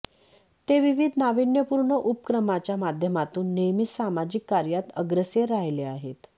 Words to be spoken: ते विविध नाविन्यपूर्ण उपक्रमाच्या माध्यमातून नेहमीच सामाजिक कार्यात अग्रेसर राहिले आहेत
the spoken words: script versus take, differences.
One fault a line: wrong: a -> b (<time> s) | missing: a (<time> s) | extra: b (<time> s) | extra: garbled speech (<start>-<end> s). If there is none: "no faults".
no faults